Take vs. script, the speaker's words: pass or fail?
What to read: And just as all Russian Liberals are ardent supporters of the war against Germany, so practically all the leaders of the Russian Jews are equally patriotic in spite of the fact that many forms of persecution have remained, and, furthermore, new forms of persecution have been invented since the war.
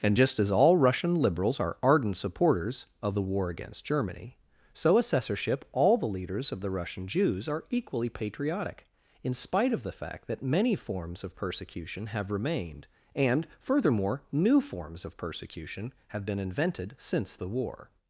fail